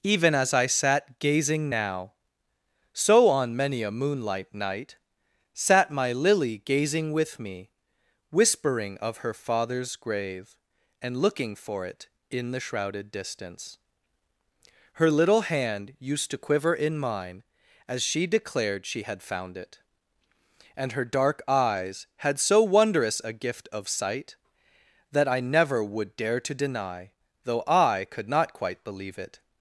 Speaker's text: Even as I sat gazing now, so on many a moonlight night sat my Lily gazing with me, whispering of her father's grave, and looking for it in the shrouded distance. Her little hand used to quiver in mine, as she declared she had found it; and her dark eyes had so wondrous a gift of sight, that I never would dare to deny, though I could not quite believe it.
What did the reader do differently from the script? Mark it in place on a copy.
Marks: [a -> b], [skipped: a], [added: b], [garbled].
Even as I sat gazing now, so on many a moonlight night sat my Lily gazing with me, whispering of her father's grave, and looking for it in the shrouded distance. Her little hand used to quiver in mine, as she declared she had found it; and her dark eyes had so wondrous a gift of sight, that I never would dare to deny, though I could not quite believe it.